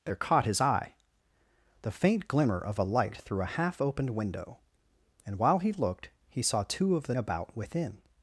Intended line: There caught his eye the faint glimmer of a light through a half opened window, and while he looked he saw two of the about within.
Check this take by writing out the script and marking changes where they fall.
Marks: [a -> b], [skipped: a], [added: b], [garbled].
There caught his eye the faint glimmer of a light through a half opened window, and while he looked he saw two of the about within.